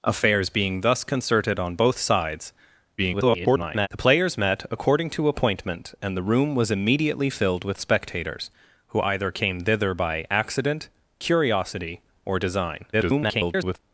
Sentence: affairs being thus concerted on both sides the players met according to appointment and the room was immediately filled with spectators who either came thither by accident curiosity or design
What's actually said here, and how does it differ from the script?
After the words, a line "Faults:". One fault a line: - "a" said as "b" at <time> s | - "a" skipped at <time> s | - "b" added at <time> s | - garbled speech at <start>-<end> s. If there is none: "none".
affairs being thus concerted on both sides [garbled] the players met according to appointment and the room was immediately filled with spectators who either came thither by accident curiosity or design [garbled]
Faults:
- garbled speech at 3.0-3.9 s
- garbled speech at 12.9-13.8 s